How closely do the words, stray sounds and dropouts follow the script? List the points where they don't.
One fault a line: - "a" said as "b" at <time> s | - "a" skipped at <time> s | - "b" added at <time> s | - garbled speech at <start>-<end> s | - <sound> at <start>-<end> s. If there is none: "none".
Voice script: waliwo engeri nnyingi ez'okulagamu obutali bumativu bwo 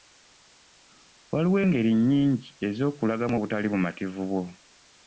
none